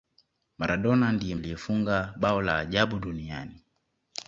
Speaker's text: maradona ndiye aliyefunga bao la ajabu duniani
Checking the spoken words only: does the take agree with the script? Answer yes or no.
yes